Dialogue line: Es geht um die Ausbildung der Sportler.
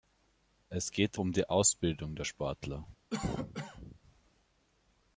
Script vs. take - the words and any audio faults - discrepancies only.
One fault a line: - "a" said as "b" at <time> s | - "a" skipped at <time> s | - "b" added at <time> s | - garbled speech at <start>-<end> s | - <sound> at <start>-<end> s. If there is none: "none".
- cough at 3.1-4.0 s